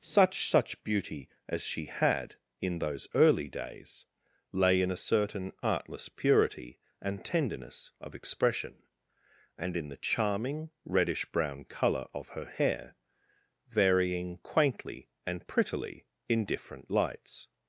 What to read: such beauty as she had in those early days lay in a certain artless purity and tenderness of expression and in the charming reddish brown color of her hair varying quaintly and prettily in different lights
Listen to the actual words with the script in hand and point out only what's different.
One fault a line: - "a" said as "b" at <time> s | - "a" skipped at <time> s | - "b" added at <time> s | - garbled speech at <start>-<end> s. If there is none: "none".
- "such" added at 0.5 s